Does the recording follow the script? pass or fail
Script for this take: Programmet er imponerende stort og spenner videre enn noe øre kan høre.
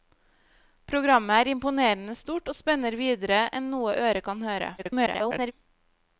fail